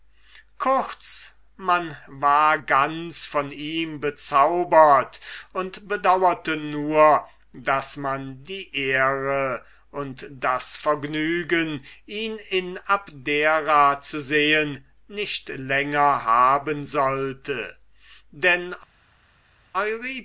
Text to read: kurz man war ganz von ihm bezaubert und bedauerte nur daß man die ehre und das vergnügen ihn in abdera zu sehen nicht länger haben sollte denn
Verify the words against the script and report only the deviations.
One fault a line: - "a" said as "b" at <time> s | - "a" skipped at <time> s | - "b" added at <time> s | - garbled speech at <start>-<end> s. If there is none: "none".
none